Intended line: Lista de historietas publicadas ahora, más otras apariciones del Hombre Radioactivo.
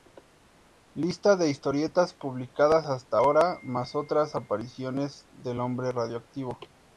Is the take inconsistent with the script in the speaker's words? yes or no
yes